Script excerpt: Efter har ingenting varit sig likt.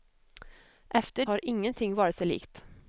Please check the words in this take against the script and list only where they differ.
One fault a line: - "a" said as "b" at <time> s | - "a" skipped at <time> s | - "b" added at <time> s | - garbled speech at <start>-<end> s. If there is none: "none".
none